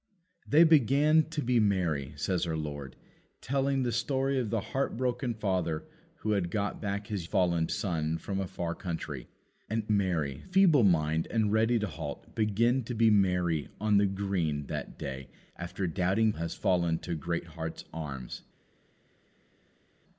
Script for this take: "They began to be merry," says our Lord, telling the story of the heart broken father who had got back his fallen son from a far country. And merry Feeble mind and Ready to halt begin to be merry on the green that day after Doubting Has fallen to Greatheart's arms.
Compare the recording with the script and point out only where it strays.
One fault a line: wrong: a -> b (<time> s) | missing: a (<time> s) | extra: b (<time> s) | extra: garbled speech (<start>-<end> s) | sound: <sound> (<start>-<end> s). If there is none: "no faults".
no faults